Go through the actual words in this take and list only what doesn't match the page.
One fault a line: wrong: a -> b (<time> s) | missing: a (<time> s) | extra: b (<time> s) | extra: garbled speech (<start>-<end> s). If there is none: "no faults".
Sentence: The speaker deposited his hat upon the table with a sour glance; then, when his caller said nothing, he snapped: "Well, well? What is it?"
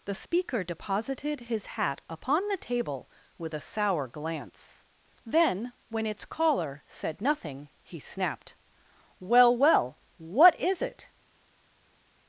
wrong: his -> its (6.1 s)